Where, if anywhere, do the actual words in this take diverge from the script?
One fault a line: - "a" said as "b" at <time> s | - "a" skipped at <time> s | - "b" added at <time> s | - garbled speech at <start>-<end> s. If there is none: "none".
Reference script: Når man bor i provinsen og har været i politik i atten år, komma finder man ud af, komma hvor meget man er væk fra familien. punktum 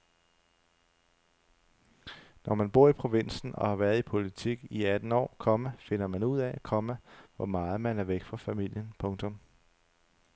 none